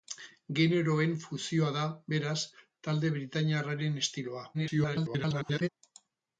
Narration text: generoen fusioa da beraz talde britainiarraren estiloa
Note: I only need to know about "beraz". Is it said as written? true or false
true